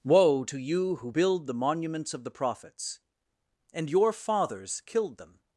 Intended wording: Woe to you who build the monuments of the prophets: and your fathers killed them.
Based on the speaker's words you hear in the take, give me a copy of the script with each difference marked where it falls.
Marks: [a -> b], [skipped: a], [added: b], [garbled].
Woe to you who build the monuments of the prophets: and your fathers killed them.